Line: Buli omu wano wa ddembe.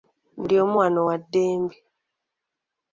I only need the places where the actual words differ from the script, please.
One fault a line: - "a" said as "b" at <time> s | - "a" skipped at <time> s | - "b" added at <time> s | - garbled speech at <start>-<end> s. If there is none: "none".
none